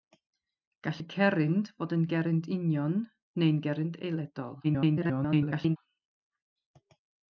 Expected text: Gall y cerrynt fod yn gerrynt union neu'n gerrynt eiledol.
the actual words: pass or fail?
fail